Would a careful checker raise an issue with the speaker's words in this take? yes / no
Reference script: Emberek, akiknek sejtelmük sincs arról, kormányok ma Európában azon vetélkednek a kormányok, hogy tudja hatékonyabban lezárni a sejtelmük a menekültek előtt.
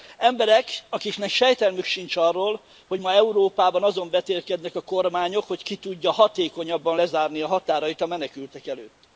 yes